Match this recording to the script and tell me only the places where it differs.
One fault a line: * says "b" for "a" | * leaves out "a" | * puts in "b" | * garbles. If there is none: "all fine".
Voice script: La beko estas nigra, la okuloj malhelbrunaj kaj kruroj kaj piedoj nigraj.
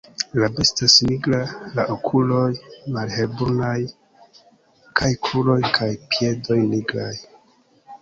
* leaves out "beko"